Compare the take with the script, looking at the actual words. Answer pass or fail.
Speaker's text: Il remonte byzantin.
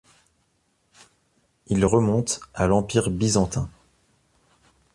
fail